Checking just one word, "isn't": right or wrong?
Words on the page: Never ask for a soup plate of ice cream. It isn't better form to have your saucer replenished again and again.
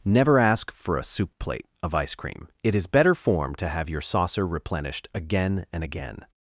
wrong